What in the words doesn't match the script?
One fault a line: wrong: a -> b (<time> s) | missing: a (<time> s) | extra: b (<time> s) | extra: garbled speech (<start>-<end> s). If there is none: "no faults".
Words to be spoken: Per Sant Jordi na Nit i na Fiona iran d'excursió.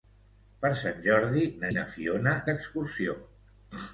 missing: Nit (1.7 s)
missing: iran (2.3 s)